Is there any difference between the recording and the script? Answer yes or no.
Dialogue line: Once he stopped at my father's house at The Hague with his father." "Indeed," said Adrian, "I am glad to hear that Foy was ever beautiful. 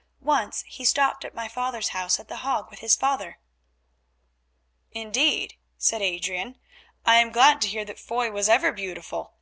no